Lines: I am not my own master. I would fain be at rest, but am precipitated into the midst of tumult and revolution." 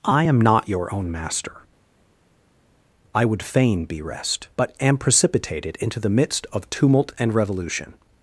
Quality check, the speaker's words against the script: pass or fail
fail